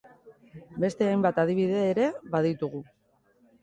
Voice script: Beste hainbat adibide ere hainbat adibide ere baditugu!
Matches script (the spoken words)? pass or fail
fail